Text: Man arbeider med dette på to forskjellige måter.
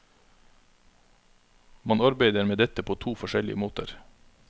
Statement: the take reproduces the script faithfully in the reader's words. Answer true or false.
true